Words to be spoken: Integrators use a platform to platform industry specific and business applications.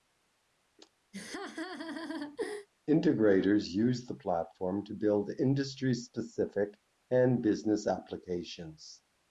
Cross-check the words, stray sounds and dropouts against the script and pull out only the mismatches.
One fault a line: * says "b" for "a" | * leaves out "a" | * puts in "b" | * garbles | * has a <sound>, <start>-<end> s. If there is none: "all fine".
* has a laugh, 1.1-2.7 s
* says "the" for "a"
* says "build" for "platform"